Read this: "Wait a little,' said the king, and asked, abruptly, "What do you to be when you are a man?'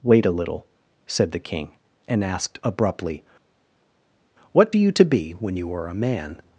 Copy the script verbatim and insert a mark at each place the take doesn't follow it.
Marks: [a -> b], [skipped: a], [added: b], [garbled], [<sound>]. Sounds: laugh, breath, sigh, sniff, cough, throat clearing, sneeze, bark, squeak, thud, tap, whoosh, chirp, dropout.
"Wait a little,' said the king, and asked, abruptly, "What do you to be when you are a man?'